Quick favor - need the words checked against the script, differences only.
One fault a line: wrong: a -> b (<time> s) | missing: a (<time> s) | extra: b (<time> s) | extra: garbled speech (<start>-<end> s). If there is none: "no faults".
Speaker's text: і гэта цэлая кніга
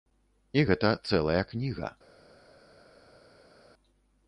no faults